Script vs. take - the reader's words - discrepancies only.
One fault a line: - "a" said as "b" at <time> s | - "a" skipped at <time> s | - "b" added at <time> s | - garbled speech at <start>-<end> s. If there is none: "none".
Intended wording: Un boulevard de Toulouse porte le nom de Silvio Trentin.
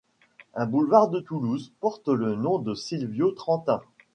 none